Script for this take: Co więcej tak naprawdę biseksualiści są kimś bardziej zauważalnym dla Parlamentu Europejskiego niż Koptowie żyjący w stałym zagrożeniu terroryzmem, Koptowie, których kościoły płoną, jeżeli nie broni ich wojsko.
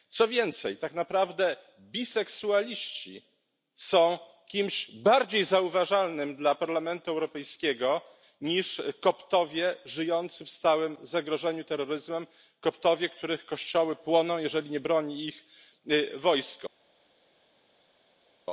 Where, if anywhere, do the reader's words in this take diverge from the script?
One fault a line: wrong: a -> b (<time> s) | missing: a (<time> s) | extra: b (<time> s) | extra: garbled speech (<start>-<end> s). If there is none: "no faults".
no faults